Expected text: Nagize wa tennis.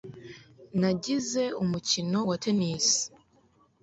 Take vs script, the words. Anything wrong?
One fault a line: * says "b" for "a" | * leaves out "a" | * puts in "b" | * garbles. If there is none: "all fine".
* puts in "umukino"